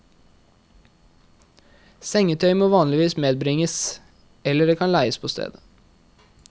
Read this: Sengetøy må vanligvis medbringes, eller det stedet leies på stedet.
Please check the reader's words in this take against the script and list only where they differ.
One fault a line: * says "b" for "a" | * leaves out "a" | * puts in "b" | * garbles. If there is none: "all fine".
* says "kan" for "stedet"